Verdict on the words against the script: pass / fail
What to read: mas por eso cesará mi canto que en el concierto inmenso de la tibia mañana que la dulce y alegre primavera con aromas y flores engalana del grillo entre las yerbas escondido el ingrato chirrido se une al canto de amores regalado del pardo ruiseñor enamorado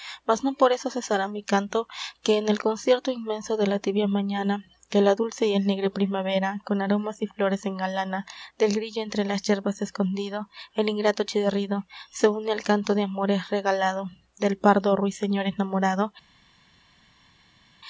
fail